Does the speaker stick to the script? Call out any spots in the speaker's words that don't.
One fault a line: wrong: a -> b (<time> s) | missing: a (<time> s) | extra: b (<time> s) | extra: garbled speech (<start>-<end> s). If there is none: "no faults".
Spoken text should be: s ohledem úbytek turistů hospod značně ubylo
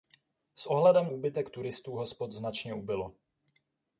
no faults